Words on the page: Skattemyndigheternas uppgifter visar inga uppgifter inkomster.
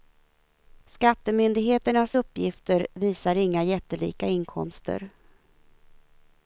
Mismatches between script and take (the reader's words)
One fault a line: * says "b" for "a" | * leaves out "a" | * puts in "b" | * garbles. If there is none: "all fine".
* says "jättelika" for "uppgifter"